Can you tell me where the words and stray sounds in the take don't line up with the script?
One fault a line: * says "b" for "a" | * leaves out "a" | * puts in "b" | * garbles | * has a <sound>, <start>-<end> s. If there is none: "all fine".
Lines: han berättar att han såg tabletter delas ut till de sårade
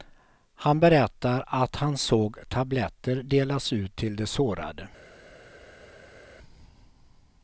all fine